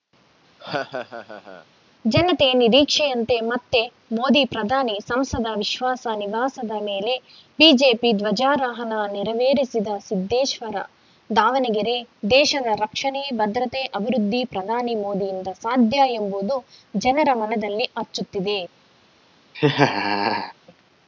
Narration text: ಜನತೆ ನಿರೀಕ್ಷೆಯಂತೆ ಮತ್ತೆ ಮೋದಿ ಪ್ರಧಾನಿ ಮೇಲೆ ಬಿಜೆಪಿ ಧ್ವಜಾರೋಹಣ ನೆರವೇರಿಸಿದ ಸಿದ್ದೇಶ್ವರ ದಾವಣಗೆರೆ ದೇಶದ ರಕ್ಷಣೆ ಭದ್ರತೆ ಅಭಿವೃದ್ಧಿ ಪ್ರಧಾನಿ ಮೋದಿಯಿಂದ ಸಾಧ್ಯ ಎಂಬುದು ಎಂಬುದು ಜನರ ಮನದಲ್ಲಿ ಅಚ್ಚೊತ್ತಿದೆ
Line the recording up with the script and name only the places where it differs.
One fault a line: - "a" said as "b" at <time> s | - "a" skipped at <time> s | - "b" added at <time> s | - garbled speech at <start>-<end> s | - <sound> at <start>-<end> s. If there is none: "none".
- laugh at 0.6-1.7 s
- "ಸಂಸದ ವಿಶ್ವಾಸ ನಿವಾಸದ" added at 5.0 s
- "ಎಂಬುದು" skipped at 16.6 s
- laugh at 19.5-20.5 s